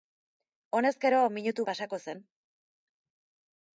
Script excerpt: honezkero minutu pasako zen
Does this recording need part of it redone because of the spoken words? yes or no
no